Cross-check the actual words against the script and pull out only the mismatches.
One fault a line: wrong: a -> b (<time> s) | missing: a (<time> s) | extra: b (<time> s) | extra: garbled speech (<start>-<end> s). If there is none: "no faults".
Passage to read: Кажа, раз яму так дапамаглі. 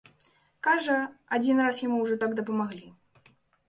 extra: адзін (1.4 s)
extra: ўжо (2.0 s)